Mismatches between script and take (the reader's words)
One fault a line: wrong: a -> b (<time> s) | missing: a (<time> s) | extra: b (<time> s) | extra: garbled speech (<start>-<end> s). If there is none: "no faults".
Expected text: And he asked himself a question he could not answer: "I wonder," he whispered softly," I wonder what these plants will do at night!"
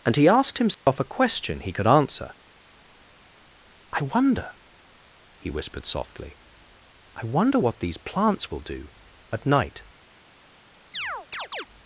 missing: not (1.9 s)